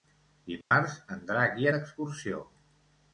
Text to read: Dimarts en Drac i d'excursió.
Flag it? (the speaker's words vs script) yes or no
no